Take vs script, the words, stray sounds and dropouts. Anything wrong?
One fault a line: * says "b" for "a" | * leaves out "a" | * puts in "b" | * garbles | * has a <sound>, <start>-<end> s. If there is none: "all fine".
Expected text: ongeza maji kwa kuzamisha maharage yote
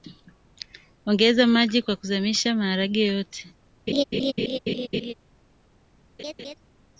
* has a laugh, 3.9-5.1 s
* has a laugh, 6.2-6.5 s